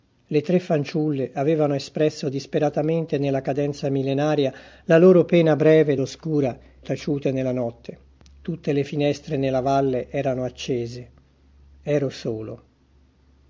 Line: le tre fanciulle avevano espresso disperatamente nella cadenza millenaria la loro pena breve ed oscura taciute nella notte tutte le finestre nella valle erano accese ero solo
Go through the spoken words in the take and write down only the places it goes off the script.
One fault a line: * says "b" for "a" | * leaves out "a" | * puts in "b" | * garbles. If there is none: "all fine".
all fine